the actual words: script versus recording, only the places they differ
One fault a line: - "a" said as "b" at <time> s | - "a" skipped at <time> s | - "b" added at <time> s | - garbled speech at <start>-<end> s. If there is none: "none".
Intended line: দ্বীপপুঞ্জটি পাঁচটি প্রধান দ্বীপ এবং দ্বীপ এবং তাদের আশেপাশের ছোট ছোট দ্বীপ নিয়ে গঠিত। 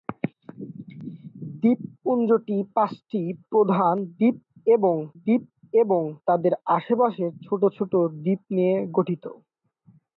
none